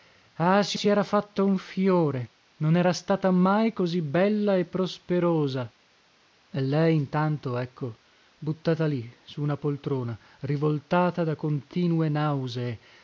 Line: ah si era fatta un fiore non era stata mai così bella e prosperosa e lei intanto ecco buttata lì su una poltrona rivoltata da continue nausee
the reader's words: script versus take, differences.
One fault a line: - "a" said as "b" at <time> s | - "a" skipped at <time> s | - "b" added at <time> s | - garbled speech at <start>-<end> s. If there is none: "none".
- "si" added at 0.7 s